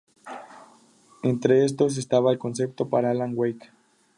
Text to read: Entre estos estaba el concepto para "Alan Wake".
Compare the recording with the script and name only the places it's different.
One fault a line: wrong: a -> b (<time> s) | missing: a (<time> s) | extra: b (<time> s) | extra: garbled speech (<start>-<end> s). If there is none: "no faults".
no faults